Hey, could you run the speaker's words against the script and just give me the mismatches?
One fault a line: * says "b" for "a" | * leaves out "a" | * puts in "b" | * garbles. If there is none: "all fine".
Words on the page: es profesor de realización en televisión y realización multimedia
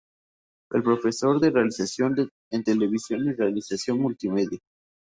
all fine